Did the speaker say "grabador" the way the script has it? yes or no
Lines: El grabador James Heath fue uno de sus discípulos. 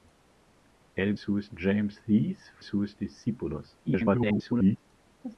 no